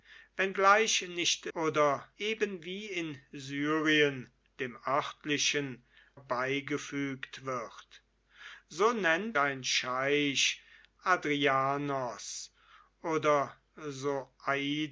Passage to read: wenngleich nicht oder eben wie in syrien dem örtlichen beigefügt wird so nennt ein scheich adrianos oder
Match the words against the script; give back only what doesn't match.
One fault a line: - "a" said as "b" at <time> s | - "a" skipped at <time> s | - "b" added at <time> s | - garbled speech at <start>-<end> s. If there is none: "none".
none